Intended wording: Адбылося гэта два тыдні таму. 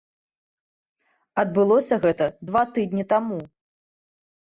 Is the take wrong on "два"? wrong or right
right